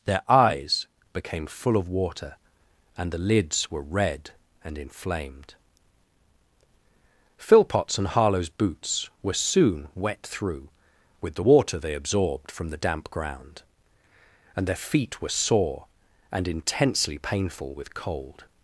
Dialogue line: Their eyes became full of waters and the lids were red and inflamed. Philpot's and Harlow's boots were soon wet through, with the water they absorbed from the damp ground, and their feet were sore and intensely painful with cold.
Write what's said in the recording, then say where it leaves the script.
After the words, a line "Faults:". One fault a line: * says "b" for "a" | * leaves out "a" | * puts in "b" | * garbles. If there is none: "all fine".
Their eyes became full of water and the lids were red and inflamed. Philpot's and Harlow's boots were soon wet through, with the water they absorbed from the damp ground, and their feet were sore and intensely painful with cold.
Faults:
* says "water" for "waters"